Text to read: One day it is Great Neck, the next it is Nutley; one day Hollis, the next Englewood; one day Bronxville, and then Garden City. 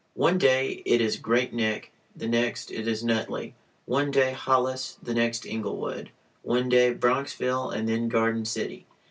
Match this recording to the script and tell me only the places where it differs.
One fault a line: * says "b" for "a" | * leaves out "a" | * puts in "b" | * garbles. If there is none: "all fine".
all fine